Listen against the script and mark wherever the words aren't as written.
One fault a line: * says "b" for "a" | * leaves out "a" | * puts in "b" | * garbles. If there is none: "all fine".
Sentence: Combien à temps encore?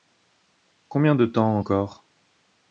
* says "de" for "à"